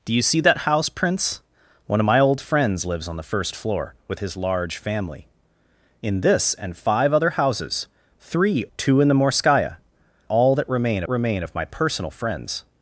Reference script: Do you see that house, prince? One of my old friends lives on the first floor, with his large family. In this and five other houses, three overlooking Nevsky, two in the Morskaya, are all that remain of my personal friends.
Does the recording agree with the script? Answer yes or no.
no